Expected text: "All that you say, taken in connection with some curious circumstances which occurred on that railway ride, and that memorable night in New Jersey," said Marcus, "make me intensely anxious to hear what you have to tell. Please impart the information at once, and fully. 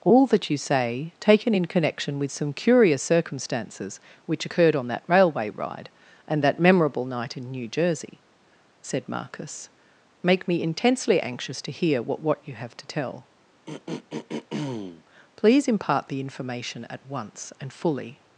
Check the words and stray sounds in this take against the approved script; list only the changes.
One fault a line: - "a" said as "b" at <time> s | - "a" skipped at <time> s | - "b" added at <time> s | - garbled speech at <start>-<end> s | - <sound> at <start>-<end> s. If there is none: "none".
- "what" added at 12.2 s
- throat clearing at 13.7-15.0 s